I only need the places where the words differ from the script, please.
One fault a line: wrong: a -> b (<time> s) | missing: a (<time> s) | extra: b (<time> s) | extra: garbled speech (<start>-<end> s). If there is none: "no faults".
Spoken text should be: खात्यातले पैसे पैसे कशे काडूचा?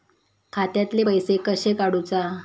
missing: पैसे (1.4 s)